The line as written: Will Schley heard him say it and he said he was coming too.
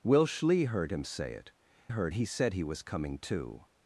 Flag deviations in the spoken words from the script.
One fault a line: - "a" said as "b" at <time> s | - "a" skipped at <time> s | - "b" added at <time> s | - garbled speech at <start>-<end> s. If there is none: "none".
- "and" said as "heard" at 1.9 s